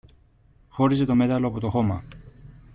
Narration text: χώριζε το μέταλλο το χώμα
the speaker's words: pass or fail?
fail